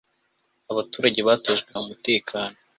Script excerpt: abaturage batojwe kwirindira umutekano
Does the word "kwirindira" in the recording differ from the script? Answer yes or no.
yes